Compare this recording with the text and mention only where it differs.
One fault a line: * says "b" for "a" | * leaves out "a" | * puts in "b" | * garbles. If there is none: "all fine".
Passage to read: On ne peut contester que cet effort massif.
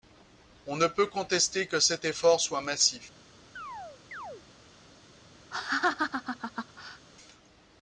* puts in "soit"